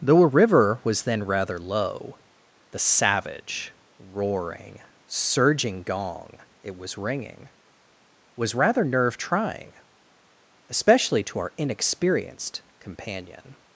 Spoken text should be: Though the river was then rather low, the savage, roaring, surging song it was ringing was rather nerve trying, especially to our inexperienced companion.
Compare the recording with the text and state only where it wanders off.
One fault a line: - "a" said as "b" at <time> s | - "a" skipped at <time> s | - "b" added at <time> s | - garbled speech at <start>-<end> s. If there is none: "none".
- "the" said as "a" at 0.2 s
- "song" said as "gong" at 5.8 s